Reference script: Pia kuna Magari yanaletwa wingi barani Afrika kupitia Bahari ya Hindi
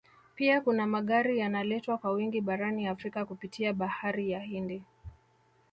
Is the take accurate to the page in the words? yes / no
no